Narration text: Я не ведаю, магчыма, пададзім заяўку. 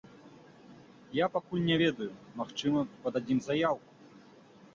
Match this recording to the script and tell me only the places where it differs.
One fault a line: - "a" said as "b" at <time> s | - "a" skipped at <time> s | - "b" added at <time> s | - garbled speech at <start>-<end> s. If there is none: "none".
- "пакуль" added at 1.3 s